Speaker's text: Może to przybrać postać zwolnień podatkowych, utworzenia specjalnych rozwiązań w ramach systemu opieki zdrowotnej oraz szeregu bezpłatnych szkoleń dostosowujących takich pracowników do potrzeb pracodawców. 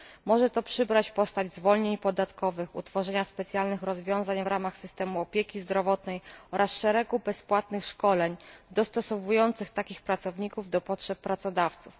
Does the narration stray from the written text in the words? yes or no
no